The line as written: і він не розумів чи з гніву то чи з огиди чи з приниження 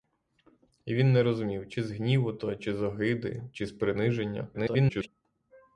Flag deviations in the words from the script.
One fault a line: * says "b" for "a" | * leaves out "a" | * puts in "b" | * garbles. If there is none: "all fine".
* garbles